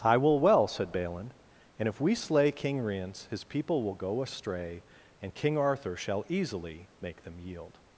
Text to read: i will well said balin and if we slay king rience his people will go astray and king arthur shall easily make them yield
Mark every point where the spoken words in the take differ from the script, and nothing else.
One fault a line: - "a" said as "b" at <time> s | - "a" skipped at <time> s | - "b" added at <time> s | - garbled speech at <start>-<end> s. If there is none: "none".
none